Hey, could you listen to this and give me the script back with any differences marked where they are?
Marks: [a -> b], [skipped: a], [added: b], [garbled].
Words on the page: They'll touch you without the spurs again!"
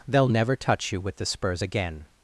They'll [added: never] touch you [without -> with] the spurs again!"